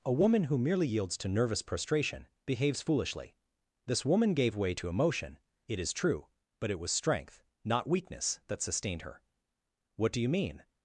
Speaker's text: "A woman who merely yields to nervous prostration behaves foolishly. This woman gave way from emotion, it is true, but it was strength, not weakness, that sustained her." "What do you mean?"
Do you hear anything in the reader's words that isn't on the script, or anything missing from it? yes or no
yes